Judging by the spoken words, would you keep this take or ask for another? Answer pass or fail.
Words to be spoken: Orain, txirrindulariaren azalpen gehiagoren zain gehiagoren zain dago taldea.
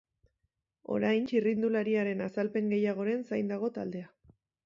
fail